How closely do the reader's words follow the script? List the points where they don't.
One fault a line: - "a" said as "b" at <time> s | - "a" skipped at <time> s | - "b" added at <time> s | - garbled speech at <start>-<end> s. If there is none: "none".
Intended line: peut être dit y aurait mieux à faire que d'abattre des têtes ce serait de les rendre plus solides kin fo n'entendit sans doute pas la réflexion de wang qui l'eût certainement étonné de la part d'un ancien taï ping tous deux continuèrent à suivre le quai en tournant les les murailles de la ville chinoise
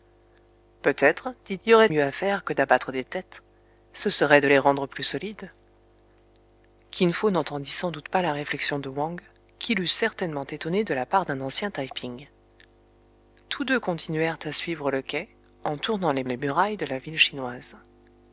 none